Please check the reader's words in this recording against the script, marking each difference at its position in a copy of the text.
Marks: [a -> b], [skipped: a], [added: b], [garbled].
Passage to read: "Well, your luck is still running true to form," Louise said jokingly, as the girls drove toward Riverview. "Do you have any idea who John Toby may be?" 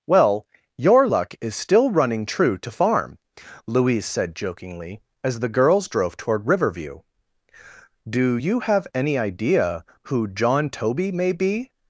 "Well, your luck is still running true to [form," -> farm] Louise said jokingly, as the girls drove toward Riverview. "Do you have any idea who John Toby may be?"